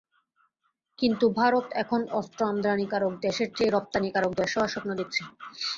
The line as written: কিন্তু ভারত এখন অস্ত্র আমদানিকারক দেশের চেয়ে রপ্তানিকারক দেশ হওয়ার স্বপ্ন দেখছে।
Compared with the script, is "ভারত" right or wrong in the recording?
right